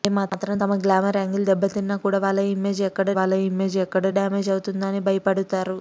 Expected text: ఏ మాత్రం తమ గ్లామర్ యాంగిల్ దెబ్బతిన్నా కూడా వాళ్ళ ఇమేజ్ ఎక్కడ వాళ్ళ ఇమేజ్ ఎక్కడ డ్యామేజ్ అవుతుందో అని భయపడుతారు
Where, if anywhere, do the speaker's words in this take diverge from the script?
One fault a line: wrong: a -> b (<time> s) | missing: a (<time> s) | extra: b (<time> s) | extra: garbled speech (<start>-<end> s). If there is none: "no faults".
no faults